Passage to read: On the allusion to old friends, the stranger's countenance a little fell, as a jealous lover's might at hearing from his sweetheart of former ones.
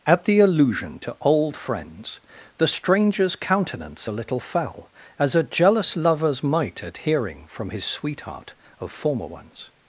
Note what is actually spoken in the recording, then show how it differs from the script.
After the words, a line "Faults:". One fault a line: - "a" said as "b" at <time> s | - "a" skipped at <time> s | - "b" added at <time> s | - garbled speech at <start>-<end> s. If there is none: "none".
At the allusion to old friends, the stranger's countenance a little fell, as a jealous lover's might at hearing from his sweetheart of former ones.
Faults:
- "On" said as "At" at 0.1 s